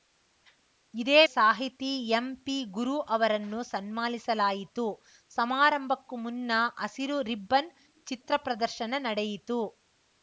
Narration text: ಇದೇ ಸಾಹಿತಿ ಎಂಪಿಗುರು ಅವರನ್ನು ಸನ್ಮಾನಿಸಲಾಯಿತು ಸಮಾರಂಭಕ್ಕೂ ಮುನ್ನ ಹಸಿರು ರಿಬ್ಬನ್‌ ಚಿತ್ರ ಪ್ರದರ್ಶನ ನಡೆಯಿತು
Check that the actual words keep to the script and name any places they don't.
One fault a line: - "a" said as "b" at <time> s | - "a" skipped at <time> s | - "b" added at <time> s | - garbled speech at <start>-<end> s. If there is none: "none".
none